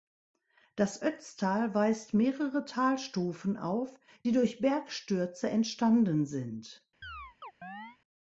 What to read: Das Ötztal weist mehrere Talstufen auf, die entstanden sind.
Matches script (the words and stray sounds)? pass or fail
fail